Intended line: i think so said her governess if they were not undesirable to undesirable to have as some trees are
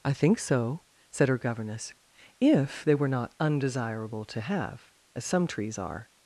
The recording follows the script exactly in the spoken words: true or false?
false